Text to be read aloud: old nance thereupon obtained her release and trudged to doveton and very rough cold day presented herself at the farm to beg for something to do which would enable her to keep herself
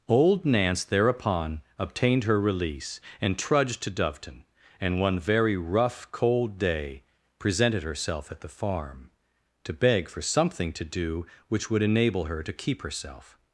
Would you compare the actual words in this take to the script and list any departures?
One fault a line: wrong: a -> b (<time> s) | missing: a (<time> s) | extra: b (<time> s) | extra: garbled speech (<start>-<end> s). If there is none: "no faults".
extra: one (5.0 s)